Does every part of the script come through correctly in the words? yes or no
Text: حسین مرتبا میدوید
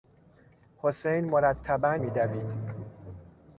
yes